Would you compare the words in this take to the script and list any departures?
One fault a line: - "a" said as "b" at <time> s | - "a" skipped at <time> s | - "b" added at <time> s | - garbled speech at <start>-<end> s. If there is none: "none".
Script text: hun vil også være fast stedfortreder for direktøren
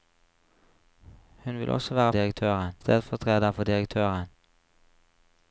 - "fast" said as "direktøren" at 2.1 s